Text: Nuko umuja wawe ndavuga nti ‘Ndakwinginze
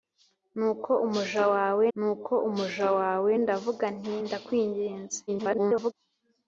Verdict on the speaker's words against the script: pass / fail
fail